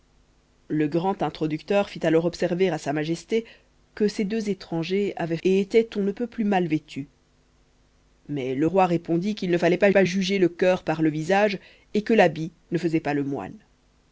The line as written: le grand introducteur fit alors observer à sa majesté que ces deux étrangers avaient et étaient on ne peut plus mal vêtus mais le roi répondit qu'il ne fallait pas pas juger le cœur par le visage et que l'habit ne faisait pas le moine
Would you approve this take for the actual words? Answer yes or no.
yes